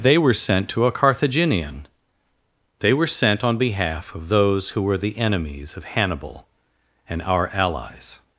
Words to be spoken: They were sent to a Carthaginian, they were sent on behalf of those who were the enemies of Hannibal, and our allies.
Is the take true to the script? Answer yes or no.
yes